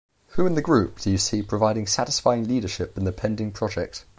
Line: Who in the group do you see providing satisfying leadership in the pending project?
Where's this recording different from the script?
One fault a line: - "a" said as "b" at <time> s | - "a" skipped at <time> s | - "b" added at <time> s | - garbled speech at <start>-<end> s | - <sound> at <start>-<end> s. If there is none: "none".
none